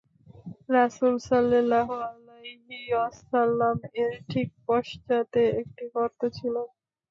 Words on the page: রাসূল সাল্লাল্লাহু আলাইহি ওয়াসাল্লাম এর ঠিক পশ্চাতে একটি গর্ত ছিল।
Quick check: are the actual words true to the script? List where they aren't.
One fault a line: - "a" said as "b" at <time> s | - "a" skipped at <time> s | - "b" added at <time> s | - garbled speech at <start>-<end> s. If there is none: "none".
none